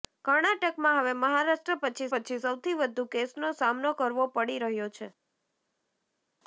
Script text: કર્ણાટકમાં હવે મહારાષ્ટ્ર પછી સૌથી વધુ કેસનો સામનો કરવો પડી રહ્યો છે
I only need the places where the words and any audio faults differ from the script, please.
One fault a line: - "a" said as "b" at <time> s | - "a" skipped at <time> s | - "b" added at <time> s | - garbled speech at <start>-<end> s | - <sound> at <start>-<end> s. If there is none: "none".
- "પછી" added at 2.1 s